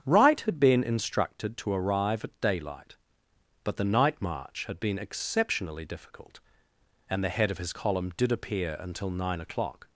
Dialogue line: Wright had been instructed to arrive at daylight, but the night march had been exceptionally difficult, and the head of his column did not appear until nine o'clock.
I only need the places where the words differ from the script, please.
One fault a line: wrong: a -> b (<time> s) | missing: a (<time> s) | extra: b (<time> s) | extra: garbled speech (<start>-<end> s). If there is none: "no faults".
missing: not (8.3 s)